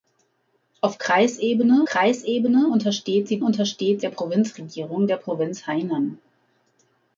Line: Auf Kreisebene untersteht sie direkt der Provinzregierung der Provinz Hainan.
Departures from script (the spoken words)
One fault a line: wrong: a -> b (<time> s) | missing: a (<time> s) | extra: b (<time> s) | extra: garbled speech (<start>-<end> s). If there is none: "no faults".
extra: Kreisebene (1.8 s)
wrong: direkt -> untersteht (3.4 s)